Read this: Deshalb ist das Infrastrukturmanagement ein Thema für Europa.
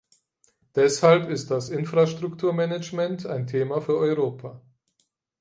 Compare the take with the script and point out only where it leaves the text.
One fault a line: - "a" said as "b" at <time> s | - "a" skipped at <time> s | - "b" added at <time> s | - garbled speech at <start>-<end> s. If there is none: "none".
none